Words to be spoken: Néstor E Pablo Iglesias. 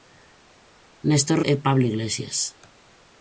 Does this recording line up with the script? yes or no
yes